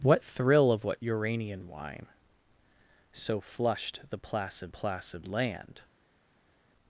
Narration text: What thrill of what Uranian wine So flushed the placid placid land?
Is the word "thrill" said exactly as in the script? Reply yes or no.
yes